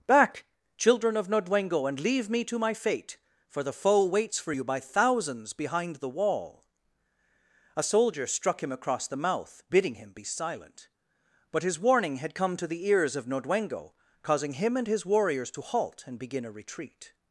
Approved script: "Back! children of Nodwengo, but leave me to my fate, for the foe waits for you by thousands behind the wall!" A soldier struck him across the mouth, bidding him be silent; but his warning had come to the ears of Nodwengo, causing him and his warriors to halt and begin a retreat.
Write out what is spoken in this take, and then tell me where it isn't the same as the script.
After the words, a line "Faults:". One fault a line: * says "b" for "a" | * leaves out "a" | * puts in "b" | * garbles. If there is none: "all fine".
"Back! children of Nodwengo, and leave me to my fate, for the foe waits for you by thousands behind the wall!" A soldier struck him across the mouth, bidding him be silent; but his warning had come to the ears of Nodwengo, causing him and his warriors to halt and begin a retreat.
Faults:
* says "and" for "but"